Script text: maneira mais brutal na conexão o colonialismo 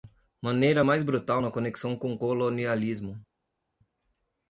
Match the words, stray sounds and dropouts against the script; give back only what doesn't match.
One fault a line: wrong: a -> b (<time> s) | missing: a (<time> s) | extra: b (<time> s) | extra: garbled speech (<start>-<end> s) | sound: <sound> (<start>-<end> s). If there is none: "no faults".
extra: com (2.0 s)